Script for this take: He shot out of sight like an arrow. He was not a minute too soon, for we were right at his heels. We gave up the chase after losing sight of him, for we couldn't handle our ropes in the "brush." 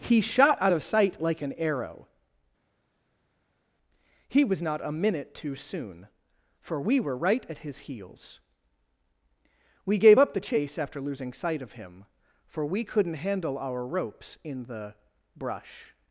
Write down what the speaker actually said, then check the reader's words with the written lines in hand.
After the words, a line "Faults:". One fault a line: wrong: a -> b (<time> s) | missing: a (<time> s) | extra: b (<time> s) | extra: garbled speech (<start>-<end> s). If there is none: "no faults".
He shot out of sight like an arrow. He was not a minute too soon, for we were right at his heels. We gave up the chase after losing sight of him, for we couldn't handle our ropes in the "brush."
Faults:
no faults